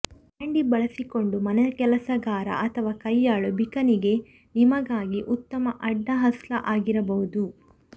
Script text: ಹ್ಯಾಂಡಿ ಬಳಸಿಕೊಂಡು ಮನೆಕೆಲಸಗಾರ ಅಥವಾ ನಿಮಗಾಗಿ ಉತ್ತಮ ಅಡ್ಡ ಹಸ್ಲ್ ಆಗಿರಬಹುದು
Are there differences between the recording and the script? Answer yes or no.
yes